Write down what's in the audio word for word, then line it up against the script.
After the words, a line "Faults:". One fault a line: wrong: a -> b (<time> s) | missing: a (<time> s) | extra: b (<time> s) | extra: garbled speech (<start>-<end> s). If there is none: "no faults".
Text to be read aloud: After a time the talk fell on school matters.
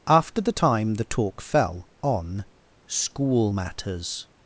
After the time the talk fell on school matters.
Faults:
wrong: a -> the (0.4 s)